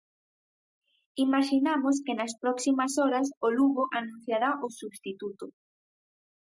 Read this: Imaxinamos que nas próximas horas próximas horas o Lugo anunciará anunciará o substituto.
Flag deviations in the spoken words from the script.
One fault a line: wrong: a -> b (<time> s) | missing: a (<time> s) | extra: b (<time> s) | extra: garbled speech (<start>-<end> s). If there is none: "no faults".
missing: próximas horas (3.3 s)
missing: anunciará (4.5 s)